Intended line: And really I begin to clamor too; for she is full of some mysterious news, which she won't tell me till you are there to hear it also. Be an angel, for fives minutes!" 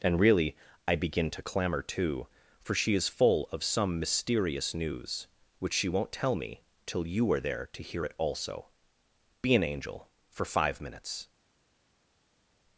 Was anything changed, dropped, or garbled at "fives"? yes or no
yes